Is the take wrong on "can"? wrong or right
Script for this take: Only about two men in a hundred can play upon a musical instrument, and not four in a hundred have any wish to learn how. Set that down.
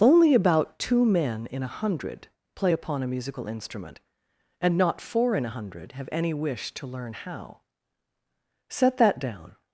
wrong